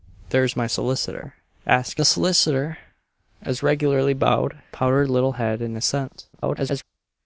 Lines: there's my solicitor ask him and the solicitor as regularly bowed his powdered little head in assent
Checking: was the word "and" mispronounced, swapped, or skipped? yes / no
yes